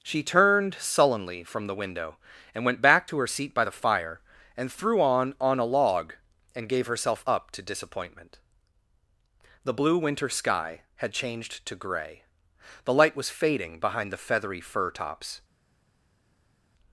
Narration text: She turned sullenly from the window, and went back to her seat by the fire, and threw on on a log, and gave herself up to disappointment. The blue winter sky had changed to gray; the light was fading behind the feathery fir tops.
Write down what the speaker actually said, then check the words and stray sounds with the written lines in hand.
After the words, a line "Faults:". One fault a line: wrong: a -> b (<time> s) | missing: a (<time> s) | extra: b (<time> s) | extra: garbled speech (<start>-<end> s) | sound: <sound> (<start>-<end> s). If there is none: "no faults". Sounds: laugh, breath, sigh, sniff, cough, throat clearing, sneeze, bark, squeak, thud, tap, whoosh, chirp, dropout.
She turned sullenly from the window, and went back to her seat by the fire, and threw on on a log, and gave herself up to disappointment. The blue winter sky had changed to gray; the light was fading behind the feathery fir tops.
Faults:
no faults